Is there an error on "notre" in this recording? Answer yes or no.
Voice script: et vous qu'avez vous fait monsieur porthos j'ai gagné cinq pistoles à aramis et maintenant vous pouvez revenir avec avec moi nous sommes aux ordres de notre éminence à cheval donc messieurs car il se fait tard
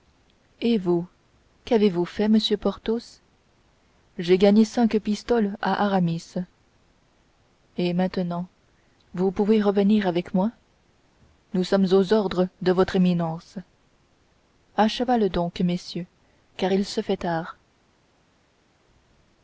yes